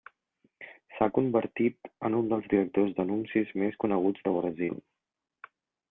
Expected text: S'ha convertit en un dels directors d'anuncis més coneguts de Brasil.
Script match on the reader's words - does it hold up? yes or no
yes